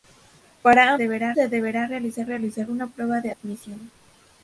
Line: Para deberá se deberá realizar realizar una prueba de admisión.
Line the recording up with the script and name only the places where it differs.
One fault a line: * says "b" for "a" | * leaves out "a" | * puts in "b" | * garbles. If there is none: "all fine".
all fine